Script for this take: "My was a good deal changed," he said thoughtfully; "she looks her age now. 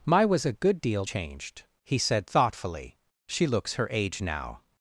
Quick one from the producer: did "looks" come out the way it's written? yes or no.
yes